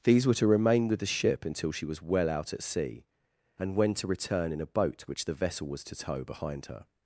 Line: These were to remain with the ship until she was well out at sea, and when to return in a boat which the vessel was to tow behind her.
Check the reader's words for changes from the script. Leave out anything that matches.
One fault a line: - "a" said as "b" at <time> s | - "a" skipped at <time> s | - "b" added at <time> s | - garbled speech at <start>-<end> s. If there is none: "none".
none